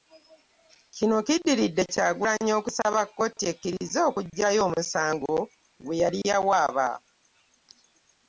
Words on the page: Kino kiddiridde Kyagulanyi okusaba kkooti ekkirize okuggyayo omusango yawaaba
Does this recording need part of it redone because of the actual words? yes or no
yes